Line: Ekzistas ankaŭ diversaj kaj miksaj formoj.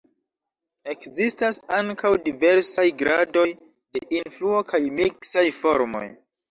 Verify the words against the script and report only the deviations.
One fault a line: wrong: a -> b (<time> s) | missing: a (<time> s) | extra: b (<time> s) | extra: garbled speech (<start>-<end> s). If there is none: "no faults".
extra: gradoj de influo (3.0 s)